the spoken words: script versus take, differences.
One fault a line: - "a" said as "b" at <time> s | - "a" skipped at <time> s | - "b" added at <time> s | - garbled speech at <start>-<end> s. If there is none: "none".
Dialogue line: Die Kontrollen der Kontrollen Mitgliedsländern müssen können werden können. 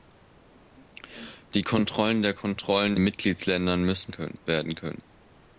none